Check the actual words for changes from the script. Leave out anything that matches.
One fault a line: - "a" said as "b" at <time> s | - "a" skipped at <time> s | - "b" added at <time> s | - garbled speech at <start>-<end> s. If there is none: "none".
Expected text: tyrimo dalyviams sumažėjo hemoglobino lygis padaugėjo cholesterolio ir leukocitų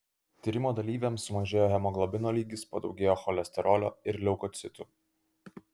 none